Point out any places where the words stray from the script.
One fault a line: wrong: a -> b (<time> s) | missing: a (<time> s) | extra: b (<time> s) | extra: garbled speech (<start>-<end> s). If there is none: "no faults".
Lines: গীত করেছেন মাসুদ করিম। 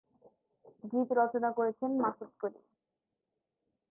extra: রচনা (1.1 s)